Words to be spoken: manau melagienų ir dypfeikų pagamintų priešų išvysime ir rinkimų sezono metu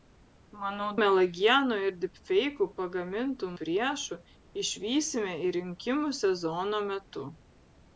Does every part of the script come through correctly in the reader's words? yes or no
yes